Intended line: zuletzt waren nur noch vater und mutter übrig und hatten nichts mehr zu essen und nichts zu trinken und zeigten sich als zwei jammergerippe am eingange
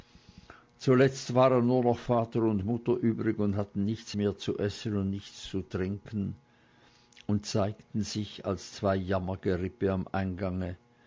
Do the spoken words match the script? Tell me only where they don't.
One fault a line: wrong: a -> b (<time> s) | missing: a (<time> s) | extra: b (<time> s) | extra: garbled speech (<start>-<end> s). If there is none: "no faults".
no faults